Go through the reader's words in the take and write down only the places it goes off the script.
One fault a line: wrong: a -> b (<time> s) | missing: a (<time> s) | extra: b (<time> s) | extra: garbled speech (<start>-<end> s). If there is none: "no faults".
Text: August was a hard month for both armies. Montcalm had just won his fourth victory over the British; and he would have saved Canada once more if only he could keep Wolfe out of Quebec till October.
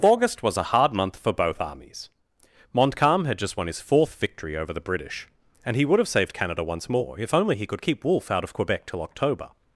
no faults